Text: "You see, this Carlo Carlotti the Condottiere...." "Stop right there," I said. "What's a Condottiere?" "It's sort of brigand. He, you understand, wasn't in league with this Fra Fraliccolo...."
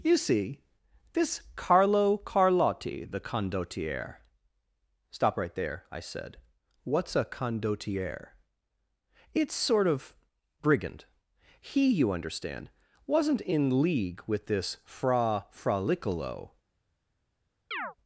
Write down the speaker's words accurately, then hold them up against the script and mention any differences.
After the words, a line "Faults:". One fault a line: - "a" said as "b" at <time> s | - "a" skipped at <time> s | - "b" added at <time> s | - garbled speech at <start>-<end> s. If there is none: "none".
"You see, this Carlo Carlotti the Condottiere...." "Stop right there," I said. "What's a Condottiere?" "It's sort of brigand. He, you understand, wasn't in league with this Fra Fraliccolo...."
Faults:
none